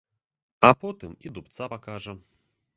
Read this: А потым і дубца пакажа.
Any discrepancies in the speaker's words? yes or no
no